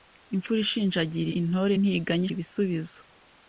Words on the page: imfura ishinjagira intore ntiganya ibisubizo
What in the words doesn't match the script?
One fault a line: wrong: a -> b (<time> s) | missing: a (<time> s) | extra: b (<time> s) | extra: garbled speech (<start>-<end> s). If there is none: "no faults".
no faults